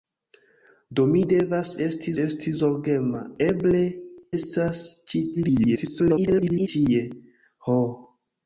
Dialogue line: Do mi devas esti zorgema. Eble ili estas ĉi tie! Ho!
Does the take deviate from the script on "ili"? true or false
true